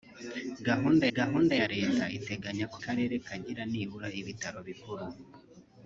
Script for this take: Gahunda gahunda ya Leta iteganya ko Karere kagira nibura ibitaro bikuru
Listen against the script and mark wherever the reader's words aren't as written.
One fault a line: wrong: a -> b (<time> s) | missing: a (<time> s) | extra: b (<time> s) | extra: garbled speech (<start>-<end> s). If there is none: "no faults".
no faults